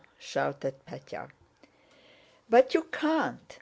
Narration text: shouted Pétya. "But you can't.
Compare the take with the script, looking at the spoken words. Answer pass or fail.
pass